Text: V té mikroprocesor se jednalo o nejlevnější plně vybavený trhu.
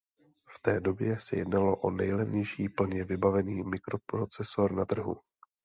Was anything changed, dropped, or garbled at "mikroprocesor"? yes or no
yes